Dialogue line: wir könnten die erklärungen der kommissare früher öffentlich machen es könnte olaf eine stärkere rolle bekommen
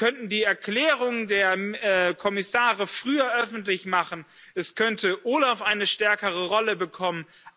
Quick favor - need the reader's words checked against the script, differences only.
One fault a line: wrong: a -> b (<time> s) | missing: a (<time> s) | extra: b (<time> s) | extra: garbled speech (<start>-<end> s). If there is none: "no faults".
no faults